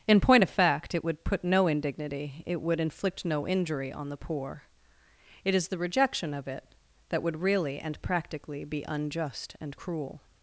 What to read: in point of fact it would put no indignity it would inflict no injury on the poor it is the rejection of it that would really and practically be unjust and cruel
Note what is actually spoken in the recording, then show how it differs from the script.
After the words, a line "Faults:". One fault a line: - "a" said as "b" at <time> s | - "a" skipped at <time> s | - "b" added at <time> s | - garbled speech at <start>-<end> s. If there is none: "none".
in point of fact it would put no indignity it would inflict no injury on the poor it is the rejection of it that would really and practically be unjust and cruel
Faults:
none